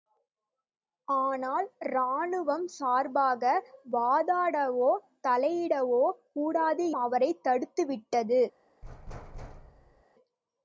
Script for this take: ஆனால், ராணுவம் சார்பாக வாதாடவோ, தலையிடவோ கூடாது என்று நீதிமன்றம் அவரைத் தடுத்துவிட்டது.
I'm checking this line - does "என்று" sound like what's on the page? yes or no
no